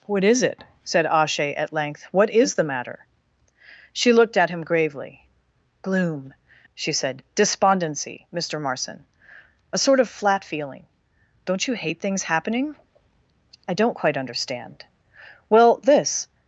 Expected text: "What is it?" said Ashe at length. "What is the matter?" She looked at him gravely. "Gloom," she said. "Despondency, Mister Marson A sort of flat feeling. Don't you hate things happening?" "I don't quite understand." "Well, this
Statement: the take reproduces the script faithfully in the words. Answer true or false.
true